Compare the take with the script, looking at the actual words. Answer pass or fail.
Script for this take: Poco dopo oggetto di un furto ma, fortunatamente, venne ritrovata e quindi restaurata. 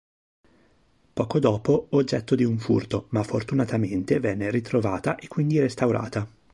pass